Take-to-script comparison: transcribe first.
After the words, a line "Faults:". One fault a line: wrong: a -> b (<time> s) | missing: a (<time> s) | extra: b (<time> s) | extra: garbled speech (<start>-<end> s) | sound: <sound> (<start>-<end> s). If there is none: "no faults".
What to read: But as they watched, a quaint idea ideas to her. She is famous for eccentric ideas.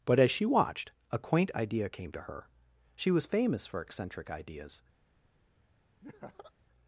But as she watched, a quaint idea came to her. She was famous for eccentric ideas.
Faults:
wrong: they -> she (0.3 s)
wrong: ideas -> came (1.9 s)
wrong: is -> was (3.1 s)
sound: laugh (6.0-6.5 s)